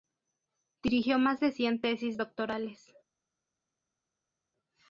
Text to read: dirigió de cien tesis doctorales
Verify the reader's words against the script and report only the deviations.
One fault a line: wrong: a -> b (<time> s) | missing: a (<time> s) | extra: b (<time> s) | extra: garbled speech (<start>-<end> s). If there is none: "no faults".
extra: más (1.2 s)